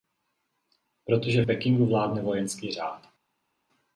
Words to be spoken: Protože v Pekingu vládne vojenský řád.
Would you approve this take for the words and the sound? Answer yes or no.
no